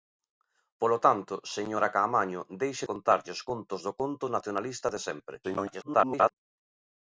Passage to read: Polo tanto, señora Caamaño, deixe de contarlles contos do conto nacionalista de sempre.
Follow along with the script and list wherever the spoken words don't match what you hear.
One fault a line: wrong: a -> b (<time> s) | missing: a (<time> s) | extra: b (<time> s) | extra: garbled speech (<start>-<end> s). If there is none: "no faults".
missing: de (2.9 s)
extra: garbled speech (5.4-6.3 s)